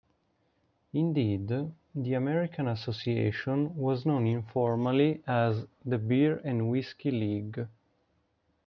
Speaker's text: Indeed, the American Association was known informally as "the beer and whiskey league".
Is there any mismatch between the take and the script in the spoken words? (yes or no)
no